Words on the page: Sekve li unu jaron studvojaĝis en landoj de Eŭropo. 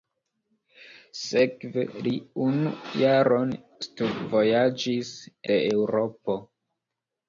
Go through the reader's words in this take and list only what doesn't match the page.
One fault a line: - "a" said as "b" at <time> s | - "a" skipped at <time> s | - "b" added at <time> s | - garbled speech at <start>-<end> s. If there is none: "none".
- "en landoj" skipped at 5.1 s